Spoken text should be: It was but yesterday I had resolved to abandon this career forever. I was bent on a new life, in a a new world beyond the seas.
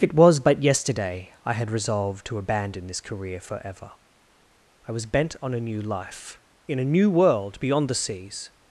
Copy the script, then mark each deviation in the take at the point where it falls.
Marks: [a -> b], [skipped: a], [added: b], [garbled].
It was but yesterday I had resolved to abandon this career forever. I was bent on a new life, in a [skipped: a] new world beyond the seas.